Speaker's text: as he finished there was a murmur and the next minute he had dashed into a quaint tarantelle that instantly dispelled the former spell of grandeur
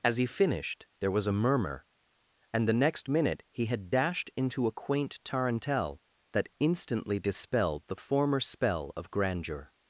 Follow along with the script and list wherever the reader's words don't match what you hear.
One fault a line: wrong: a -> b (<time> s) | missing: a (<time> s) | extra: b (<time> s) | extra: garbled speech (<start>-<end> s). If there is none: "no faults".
no faults